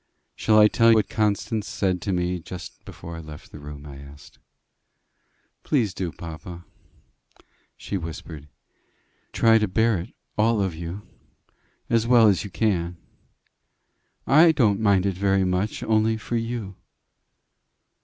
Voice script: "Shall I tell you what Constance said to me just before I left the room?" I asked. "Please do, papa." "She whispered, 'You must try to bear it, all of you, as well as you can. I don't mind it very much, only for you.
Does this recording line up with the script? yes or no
no